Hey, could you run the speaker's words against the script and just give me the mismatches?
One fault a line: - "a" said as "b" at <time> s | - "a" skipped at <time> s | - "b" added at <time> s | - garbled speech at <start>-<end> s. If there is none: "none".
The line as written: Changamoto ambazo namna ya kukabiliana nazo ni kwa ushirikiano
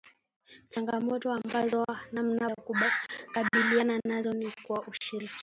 none